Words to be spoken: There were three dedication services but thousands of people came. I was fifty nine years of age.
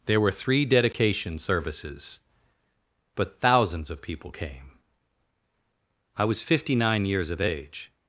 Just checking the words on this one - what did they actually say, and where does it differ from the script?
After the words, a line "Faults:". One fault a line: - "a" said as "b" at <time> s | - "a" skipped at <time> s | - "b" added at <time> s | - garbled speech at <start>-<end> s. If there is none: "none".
There were three dedication services but thousands of people came. I was fifty nine years of age.
Faults:
none